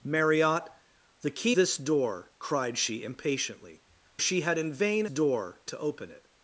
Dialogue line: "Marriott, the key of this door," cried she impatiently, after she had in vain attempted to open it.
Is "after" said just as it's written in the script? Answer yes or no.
no